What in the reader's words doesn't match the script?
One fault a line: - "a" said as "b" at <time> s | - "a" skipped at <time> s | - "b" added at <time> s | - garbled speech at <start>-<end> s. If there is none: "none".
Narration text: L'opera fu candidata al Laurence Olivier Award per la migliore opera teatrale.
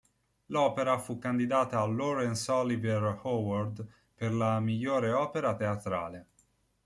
none